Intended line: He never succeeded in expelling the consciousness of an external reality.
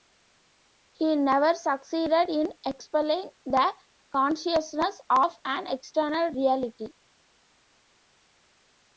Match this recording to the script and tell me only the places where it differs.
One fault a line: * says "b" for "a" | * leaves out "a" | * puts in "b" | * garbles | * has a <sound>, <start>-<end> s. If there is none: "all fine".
all fine